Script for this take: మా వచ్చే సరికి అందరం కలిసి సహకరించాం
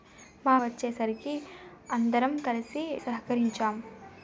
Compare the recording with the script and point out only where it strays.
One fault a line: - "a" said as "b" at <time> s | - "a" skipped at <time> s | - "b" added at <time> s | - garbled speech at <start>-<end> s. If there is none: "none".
none